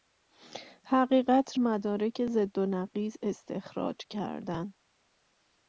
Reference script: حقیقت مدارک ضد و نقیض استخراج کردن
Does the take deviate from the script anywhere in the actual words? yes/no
no